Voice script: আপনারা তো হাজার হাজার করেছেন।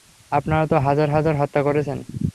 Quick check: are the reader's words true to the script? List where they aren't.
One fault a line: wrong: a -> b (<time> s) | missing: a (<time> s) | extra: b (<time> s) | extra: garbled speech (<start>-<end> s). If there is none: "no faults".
extra: হত্যা (1.4 s)